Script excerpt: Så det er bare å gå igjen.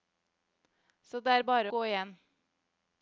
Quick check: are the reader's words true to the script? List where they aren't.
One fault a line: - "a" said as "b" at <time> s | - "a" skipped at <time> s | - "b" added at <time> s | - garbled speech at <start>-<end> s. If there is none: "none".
- "å" skipped at 1.7 s